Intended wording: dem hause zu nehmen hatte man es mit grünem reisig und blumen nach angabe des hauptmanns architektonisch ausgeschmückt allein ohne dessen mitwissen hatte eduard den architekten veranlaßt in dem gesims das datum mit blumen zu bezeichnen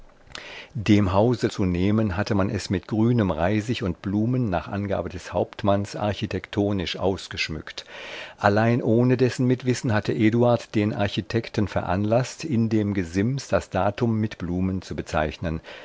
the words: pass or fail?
pass